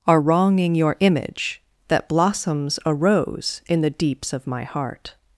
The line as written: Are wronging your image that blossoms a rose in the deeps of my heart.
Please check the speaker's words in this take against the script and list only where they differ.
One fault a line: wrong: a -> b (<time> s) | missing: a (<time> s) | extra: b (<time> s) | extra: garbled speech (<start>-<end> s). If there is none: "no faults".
no faults